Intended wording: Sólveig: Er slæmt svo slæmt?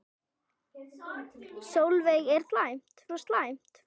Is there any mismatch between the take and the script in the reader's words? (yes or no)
no